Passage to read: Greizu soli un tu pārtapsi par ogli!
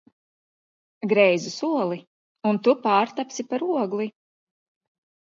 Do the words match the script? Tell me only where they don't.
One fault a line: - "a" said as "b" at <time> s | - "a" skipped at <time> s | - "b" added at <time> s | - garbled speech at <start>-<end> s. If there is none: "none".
none